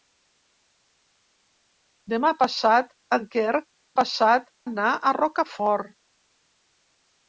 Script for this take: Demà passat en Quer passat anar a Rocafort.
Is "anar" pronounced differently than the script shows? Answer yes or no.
no